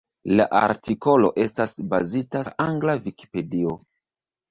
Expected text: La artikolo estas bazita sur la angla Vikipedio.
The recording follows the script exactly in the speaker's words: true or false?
false